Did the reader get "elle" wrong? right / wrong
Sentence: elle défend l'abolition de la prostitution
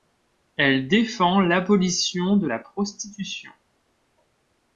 right